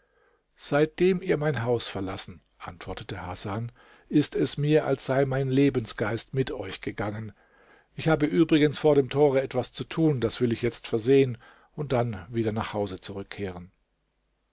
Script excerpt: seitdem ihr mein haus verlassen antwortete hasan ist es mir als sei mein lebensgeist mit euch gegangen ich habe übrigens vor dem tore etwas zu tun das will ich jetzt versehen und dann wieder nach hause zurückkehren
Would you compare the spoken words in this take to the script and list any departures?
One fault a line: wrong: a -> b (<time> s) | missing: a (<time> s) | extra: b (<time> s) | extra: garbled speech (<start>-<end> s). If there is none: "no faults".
no faults